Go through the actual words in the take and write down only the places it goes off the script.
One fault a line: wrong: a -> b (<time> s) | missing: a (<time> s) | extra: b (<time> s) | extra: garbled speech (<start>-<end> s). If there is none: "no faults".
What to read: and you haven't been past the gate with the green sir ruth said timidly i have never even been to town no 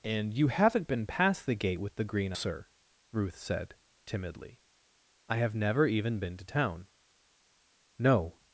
no faults